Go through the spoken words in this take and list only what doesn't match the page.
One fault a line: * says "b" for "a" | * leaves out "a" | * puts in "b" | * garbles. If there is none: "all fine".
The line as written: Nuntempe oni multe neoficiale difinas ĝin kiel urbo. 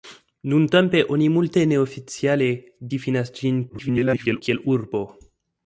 * garbles